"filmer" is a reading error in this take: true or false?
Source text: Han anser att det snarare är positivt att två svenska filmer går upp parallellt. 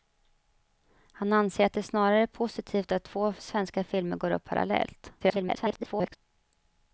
false